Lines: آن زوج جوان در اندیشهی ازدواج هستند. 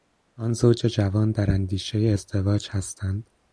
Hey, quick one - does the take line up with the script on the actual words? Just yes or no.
yes